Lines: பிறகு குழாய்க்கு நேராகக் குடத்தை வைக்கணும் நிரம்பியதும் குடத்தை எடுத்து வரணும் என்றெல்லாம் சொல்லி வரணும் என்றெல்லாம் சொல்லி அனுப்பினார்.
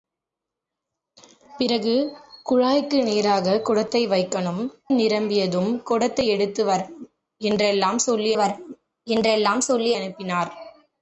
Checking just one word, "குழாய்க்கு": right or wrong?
right